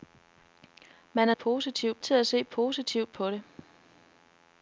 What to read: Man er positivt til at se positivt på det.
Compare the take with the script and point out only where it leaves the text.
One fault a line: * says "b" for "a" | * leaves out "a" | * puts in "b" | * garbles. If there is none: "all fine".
all fine